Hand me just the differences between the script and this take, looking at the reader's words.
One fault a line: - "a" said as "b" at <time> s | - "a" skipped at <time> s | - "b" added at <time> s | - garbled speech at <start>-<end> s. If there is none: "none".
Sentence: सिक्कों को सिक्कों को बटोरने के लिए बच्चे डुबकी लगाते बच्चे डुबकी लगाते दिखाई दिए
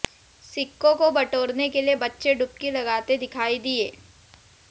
- "सिक्कों को" skipped at 1.1 s
- "बच्चे डुबकी लगाते" skipped at 3.2 s